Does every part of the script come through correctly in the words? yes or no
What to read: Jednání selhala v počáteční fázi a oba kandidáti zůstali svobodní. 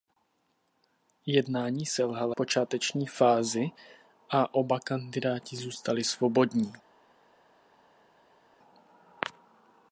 yes